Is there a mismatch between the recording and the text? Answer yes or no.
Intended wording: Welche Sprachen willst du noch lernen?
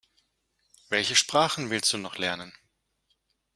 no